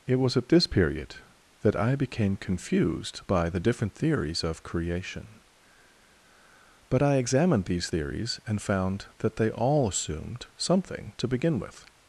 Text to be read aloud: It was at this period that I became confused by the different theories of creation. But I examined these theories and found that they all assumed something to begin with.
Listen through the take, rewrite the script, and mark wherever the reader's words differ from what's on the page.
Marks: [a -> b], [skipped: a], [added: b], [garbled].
It was at this period that I became confused by the different theories of creation. But I examined these theories and found that they all assumed something to begin with.